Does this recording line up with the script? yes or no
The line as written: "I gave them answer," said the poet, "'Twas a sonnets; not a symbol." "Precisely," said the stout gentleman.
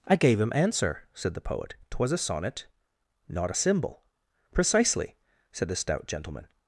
no